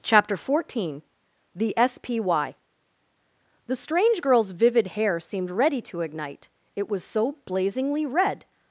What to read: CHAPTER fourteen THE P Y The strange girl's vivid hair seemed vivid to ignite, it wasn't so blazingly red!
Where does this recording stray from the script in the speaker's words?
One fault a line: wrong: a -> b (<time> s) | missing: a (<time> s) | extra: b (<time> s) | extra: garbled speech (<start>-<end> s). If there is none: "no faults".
extra: S (1.8 s)
wrong: vivid -> ready (5.5 s)
wrong: wasn't -> was (6.9 s)